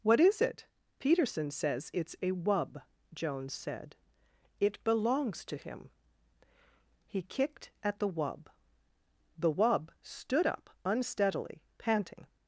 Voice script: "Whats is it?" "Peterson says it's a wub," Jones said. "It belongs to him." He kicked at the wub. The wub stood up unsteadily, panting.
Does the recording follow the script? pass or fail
fail